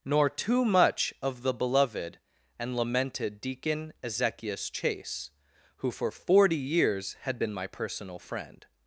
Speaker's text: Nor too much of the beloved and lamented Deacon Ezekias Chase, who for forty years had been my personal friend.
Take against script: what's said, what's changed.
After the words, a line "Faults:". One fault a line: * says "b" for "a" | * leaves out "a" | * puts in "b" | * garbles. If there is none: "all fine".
Nor too much of the beloved and lamented Deacon Ezekias Chase, who for forty years had been my personal friend.
Faults:
all fine